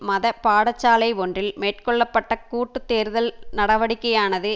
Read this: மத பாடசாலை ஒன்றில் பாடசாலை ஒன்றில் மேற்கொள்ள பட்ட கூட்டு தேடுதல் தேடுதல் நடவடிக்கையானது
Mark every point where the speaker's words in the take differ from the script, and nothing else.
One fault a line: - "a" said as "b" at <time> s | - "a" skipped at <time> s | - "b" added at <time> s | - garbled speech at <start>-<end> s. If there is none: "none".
- "பாடசாலை ஒன்றில்" skipped at 1.5 s
- "தேடுதல்" skipped at 3.3 s